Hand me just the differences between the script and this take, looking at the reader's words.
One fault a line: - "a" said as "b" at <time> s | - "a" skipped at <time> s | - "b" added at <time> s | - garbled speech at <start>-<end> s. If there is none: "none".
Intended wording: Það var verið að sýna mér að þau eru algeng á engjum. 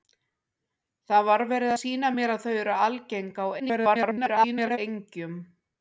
- "að" skipped at 1.7 s
- garbled speech at 3.6-4.8 s